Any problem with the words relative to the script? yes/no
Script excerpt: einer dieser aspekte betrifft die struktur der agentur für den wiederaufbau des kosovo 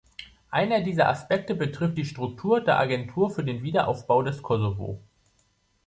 no